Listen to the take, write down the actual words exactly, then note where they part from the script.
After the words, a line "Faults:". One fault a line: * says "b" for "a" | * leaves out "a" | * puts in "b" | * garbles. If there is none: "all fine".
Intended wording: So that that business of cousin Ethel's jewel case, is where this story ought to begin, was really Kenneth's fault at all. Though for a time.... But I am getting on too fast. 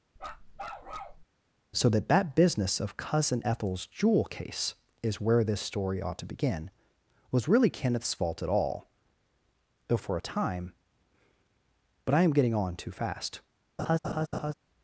So that that business of cousin Ethel's jewel case, is where this story ought to begin, was really Kenneth's fault at all. Though for a time.... But I am getting on too fast.
Faults:
all fine